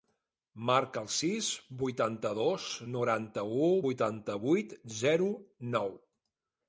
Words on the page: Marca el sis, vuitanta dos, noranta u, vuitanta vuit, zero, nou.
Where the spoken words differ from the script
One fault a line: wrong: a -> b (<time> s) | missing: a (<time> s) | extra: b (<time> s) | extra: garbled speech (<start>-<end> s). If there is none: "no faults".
no faults